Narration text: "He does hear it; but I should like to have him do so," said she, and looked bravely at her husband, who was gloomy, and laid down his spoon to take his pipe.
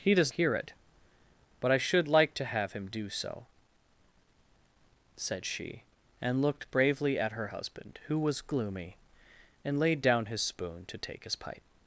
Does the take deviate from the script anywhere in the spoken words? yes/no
no